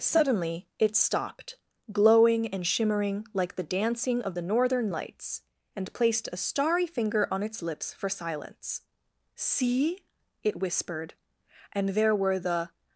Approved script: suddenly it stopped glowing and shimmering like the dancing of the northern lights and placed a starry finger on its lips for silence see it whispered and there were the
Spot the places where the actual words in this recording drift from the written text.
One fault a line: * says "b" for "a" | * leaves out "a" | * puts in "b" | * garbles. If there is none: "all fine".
all fine